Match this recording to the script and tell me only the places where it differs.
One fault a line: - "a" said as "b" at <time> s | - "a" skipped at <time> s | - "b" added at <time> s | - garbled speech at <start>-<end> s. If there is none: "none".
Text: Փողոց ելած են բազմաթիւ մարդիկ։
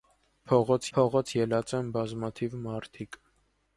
- "փողոց" added at 1.0 s